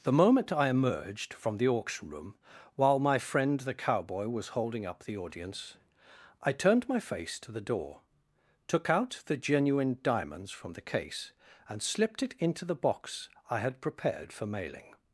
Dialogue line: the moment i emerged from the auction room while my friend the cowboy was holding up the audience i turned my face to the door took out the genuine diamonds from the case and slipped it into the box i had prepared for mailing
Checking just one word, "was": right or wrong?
right